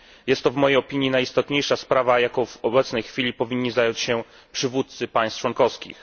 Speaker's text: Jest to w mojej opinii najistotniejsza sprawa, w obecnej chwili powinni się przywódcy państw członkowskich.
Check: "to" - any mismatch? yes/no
no